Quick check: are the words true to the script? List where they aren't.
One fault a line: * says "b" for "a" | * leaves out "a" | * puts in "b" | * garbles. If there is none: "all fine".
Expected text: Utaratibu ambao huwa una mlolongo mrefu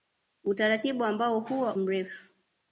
* leaves out "una mlolongo"